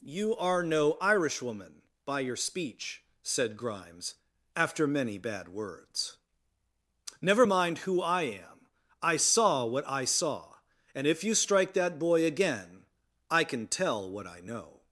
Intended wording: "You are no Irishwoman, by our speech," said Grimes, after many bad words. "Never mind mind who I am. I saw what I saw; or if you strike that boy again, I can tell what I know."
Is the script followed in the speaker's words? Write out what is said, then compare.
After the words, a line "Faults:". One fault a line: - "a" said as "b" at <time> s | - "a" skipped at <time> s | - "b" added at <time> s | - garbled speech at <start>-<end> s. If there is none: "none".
"You are no Irishwoman, by your speech," said Grimes, after many bad words. "Never mind who I am. I saw what I saw; and if you strike that boy again, I can tell what I know."
Faults:
- "our" said as "your" at 2.2 s
- "mind" skipped at 7.8 s
- "or" said as "and" at 10.9 s